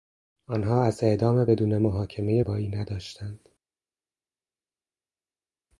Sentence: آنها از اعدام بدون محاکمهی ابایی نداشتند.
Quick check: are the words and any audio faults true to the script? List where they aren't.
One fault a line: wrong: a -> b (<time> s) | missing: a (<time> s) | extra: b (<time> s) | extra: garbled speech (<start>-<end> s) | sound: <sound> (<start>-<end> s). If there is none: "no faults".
no faults